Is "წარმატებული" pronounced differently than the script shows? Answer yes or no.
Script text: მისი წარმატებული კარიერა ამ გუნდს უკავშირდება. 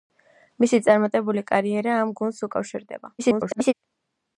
no